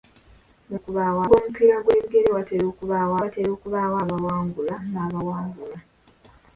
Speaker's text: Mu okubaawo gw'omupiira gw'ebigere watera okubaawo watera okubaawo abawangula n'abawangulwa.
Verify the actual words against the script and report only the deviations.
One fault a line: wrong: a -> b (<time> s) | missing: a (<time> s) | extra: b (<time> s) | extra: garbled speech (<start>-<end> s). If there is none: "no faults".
no faults